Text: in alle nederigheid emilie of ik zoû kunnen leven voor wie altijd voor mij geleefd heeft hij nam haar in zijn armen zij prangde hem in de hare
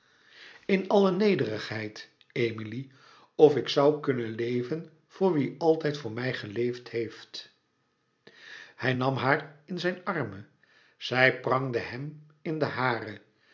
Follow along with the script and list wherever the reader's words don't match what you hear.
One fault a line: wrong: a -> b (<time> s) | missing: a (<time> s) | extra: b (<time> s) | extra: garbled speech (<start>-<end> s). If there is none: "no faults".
no faults